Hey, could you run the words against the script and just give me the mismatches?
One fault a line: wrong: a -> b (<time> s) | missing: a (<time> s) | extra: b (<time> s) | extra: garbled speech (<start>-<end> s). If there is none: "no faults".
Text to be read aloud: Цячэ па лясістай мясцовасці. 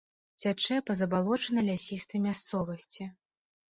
extra: забалочанай (1.0 s)